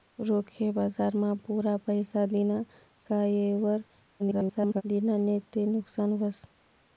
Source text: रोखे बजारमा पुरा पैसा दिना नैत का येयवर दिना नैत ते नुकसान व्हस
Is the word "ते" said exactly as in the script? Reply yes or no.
yes